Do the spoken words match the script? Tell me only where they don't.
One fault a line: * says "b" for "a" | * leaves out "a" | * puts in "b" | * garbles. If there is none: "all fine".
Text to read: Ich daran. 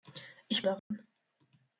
all fine